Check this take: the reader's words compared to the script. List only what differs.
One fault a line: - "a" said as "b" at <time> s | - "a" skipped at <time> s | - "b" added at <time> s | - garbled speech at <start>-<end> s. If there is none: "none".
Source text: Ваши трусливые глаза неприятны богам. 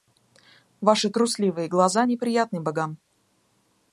none